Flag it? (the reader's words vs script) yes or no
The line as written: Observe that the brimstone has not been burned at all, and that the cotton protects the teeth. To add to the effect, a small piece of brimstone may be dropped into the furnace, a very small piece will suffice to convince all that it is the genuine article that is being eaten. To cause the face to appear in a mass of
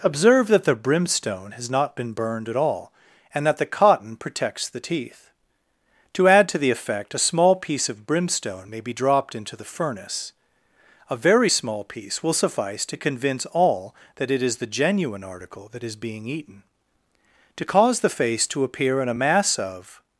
no